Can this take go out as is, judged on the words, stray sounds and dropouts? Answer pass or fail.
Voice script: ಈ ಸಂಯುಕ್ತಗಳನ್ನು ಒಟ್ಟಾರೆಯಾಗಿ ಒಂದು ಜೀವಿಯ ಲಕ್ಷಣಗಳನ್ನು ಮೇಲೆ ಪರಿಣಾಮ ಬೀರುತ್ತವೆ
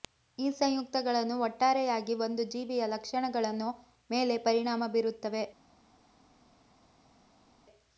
pass